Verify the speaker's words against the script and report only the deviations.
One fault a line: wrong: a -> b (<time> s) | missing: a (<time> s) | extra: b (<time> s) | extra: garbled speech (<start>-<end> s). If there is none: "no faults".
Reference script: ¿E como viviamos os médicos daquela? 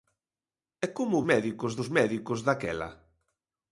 wrong: viviamos -> médicos (1.3 s)